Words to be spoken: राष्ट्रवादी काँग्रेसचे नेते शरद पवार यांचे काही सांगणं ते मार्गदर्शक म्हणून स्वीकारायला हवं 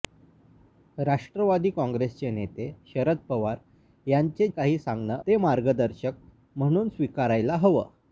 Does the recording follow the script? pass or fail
pass